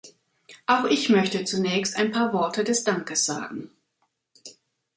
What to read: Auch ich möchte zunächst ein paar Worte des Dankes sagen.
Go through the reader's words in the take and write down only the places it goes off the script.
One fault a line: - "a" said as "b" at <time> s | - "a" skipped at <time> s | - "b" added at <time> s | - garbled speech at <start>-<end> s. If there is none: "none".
none